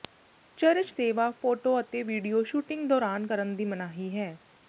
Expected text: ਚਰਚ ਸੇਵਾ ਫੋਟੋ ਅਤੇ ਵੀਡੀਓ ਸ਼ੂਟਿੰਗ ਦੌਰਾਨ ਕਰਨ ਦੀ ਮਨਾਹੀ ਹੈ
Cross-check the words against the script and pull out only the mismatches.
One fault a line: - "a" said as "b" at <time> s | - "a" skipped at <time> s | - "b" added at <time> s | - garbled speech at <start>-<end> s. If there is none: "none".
none